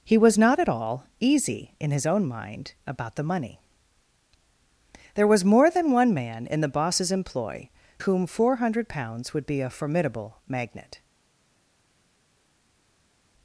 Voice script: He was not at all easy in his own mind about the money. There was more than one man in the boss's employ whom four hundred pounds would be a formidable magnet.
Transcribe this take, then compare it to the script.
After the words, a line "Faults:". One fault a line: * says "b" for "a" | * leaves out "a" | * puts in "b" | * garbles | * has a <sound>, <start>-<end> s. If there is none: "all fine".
He was not at all easy in his own mind about the money. There was more than one man in the boss's employ whom four hundred pounds would be a formidable magnet.
Faults:
all fine